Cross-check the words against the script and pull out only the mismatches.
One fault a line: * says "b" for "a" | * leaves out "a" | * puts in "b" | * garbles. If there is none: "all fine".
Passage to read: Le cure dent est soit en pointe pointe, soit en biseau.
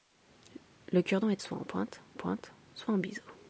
all fine